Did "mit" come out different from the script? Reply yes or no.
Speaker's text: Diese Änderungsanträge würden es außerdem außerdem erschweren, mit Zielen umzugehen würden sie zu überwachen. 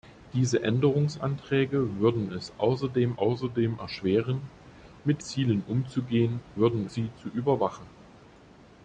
no